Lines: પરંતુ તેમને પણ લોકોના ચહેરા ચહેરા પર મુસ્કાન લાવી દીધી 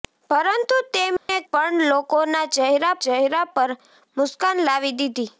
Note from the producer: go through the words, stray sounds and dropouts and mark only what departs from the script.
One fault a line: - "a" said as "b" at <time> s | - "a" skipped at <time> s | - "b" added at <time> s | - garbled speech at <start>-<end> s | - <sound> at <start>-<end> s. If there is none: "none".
- dropout at 1.2-1.3 s